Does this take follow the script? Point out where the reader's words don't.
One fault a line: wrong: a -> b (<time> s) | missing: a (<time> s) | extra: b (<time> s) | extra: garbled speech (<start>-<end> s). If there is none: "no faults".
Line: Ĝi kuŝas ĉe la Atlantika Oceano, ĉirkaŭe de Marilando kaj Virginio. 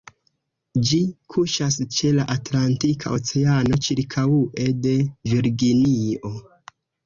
missing: Marilando kaj (4.9 s)